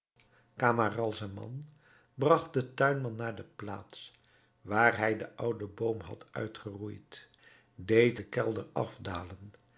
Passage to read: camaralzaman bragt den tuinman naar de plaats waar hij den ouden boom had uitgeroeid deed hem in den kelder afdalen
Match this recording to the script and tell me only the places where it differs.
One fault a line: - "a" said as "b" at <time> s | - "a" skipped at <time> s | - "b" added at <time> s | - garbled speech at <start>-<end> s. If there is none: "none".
- "hem in" skipped at 8.2 s